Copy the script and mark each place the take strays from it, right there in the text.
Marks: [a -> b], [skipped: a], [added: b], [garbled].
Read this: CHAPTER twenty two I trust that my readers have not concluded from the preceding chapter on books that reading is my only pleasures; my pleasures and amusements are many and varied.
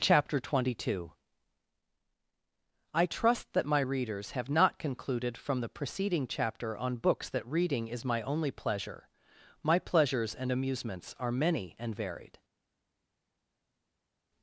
CHAPTER twenty two I trust that my readers have not concluded from the preceding chapter on books that reading is my only [pleasures; -> pleasure] my pleasures and amusements are many and varied.